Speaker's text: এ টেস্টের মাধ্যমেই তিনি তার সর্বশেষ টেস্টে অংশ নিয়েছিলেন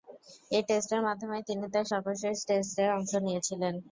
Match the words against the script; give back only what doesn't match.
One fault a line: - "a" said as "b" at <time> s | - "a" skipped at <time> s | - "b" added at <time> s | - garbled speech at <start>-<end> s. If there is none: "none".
none